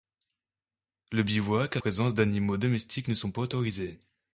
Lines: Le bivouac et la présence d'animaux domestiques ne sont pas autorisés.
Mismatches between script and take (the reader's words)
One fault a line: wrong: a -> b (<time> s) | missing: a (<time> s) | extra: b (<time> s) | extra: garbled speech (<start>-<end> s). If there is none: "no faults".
missing: la (1.8 s)